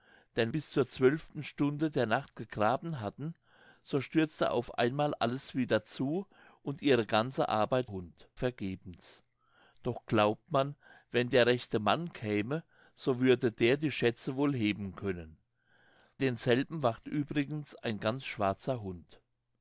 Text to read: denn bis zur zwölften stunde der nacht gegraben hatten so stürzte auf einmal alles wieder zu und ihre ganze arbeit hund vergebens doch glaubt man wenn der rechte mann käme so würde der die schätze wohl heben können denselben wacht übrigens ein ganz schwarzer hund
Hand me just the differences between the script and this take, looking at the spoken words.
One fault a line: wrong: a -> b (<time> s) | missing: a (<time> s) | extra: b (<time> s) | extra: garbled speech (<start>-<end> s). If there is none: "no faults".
no faults